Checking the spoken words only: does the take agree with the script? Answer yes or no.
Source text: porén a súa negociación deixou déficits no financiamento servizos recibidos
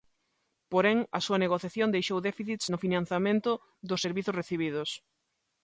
no